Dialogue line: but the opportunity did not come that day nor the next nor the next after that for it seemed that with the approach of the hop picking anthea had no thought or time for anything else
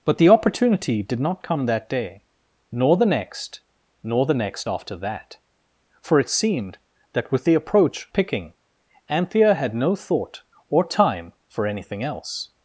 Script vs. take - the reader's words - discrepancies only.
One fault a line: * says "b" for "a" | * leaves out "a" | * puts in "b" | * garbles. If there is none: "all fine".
* leaves out "of the hop"